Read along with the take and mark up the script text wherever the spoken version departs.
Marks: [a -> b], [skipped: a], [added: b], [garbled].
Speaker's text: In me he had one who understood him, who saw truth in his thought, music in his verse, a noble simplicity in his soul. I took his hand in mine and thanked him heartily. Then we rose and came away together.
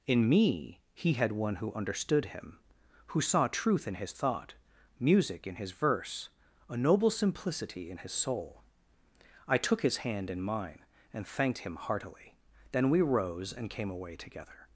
In me he had one who understood him, who saw truth in his thought, music in his verse, a noble simplicity in his soul. I took his hand in mine and thanked him heartily. Then we rose and came away together.